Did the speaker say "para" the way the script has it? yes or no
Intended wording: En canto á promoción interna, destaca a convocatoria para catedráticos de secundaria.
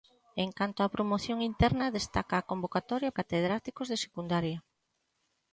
no